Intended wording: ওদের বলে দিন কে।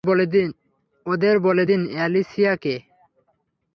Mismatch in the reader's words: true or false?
true